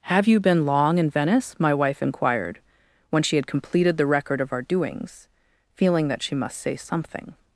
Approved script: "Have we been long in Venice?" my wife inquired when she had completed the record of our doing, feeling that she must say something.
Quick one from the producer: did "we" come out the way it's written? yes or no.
no